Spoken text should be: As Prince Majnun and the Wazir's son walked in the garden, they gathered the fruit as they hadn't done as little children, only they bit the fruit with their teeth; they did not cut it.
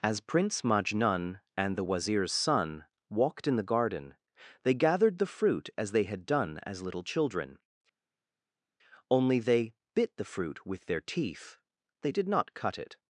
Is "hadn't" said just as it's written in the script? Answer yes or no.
no